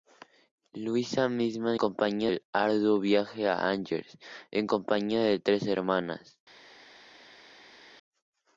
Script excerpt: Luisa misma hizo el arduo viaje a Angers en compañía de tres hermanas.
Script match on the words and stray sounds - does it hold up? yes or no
no